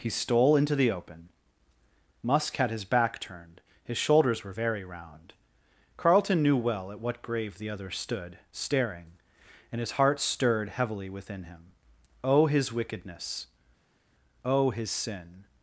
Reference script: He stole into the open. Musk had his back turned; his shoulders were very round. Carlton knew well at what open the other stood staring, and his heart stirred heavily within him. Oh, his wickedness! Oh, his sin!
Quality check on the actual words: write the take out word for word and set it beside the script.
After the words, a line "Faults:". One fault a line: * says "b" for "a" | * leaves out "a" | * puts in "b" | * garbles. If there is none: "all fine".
He stole into the open. Musk had his back turned; his shoulders were very round. Carlton knew well at what grave the other stood staring, and his heart stirred heavily within him. Oh, his wickedness! Oh, his sin!
Faults:
* says "grave" for "open"